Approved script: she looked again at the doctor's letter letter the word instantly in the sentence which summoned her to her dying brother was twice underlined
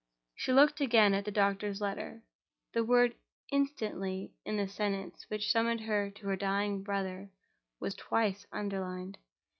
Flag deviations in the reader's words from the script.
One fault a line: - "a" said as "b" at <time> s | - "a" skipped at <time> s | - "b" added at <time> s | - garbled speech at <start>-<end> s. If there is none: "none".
- "letter" skipped at 2.2 s